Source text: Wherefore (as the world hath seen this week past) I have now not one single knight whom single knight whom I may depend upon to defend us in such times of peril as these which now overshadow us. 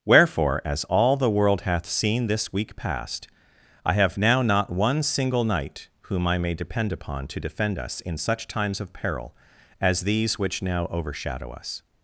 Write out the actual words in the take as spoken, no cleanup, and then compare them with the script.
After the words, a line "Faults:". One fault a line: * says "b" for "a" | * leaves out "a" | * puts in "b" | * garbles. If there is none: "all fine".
Wherefore (as all the world hath seen this week past) I have now not one single knight whom I may depend upon to defend us in such times of peril as these which now overshadow us.
Faults:
* puts in "all"
* leaves out "single knight whom"